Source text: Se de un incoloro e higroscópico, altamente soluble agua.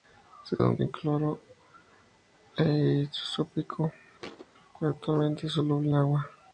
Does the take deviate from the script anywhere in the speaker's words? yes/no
no